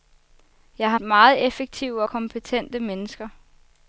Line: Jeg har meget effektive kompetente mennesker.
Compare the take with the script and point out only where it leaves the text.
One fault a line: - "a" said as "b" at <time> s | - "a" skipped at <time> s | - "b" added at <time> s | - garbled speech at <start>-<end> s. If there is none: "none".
none